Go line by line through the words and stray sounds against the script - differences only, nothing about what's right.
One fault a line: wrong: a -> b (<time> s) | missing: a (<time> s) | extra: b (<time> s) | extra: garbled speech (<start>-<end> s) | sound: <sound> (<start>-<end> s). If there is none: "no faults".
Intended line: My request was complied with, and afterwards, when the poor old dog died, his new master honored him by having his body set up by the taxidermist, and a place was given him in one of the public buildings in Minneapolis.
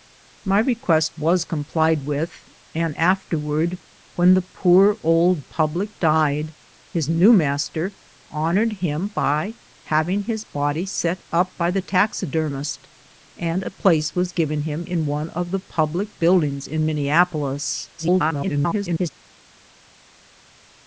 wrong: dog -> public (5.4 s)
extra: garbled speech (18.0-19.1 s)